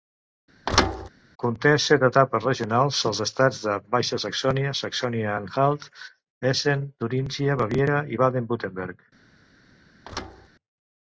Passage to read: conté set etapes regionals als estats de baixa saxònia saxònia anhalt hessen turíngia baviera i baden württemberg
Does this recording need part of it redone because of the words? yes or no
no